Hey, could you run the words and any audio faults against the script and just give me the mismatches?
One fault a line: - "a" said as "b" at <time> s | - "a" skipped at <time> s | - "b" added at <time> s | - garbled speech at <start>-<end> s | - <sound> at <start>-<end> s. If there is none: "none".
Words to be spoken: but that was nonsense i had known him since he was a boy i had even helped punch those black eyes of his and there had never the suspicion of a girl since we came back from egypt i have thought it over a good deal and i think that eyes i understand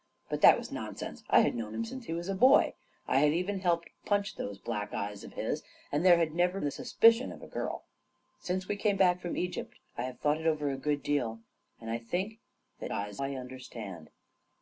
none